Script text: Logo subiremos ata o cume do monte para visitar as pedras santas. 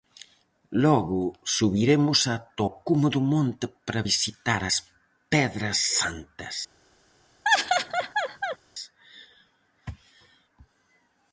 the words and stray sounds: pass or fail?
fail